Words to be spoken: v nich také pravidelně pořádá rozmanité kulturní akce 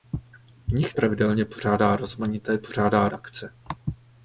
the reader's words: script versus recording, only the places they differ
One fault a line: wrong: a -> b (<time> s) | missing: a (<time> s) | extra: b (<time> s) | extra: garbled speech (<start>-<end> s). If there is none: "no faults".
missing: také (0.9 s)
wrong: kulturní -> pořádá (2.6 s)